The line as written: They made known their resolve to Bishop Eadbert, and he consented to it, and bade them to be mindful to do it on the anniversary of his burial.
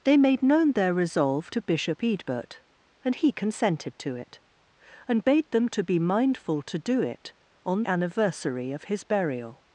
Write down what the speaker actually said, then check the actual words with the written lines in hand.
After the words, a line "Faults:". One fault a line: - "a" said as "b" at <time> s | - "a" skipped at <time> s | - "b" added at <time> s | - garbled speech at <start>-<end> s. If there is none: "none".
They made known their resolve to Bishop Eadbert, and he consented to it, and bade them to be mindful to do it on anniversary of his burial.
Faults:
- "the" skipped at 7.8 s